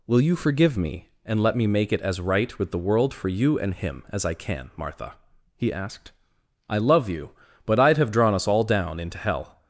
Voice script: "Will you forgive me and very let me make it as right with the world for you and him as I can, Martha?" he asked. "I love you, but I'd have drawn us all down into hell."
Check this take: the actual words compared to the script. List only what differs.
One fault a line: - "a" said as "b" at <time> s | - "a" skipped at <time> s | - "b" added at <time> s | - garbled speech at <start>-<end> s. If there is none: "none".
- "very" skipped at 1.4 s